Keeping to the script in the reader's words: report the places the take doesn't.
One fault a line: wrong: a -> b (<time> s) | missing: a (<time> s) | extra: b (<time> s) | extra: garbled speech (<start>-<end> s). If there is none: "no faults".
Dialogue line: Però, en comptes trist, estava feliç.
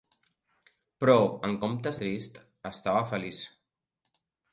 no faults